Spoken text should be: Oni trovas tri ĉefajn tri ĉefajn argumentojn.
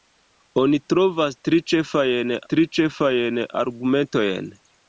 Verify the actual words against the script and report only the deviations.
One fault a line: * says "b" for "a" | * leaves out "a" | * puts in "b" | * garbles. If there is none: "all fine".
all fine